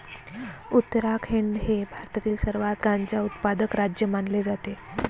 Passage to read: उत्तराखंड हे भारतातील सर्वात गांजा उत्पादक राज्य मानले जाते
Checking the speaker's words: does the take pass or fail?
pass